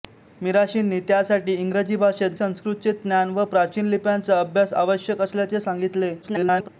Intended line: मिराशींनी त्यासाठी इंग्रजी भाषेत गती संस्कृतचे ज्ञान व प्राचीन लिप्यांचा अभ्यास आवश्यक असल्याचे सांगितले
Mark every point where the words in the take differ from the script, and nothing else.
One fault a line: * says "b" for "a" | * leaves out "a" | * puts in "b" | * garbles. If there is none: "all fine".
* leaves out "गती"
* garbles